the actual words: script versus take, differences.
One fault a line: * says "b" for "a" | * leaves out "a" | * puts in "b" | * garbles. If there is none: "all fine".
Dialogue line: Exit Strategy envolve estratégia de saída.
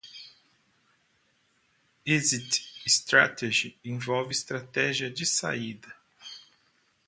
all fine